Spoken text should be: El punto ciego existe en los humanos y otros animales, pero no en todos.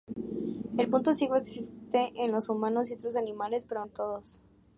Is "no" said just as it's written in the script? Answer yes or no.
no